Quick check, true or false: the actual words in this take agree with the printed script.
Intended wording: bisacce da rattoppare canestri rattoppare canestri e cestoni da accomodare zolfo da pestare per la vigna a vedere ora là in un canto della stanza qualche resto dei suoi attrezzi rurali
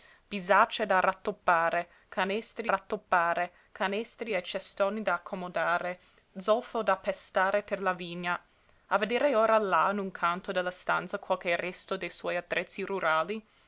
true